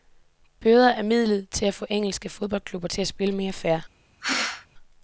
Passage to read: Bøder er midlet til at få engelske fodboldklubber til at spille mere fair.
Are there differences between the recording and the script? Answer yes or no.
no